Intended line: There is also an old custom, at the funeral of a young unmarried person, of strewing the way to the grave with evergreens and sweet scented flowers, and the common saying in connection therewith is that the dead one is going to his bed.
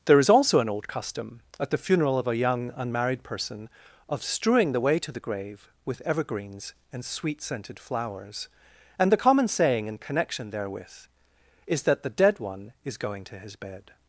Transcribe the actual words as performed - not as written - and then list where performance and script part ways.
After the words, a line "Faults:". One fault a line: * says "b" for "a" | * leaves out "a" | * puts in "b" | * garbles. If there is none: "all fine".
There is also an old custom, at the funeral of a young unmarried person, of strewing the way to the grave with evergreens and sweet scented flowers, and the common saying in connection therewith is that the dead one is going to his bed.
Faults:
all fine